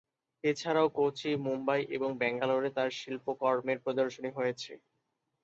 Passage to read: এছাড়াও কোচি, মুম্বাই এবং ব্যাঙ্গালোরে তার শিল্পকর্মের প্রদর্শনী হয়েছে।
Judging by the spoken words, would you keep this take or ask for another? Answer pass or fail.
pass